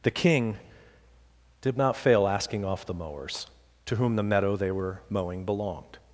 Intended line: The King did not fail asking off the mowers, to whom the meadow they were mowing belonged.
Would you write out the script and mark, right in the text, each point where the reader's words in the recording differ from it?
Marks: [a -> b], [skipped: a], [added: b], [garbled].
The King did not fail asking off the mowers, to whom the meadow they were mowing belonged.